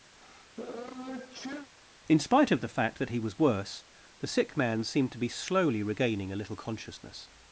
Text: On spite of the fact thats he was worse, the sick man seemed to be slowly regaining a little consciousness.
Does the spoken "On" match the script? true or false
false